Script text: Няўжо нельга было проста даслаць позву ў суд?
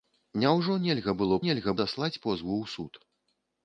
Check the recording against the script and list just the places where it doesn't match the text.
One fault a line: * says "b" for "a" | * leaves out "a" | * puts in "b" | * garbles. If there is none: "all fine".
* says "нельга" for "проста"